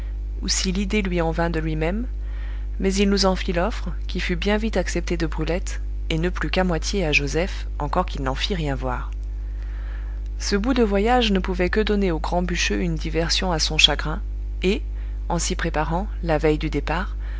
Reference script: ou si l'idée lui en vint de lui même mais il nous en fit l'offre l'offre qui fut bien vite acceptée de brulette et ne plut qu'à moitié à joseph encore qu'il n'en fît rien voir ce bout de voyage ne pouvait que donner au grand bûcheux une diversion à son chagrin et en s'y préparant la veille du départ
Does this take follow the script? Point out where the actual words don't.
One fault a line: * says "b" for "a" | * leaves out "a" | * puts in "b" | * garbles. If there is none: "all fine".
* leaves out "l'offre"